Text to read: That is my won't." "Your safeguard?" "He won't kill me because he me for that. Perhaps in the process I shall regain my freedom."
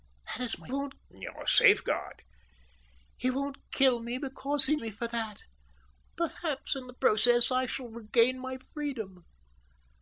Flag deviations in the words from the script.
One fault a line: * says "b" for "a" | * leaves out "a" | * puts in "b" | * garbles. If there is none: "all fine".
all fine